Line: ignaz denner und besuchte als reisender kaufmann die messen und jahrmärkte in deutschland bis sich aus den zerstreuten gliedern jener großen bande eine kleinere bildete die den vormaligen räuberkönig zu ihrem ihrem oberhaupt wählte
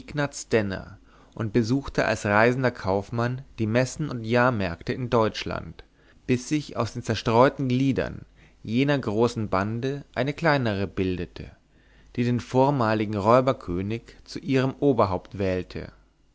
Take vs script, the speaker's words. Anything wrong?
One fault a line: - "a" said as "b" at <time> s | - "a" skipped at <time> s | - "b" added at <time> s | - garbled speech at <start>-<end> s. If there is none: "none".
- "ihrem" skipped at 14.7 s